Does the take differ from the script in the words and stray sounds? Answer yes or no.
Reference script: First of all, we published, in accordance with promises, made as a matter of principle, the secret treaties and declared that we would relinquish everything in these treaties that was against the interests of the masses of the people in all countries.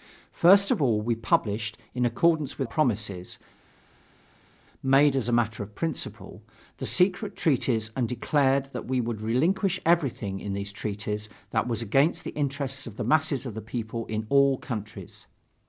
no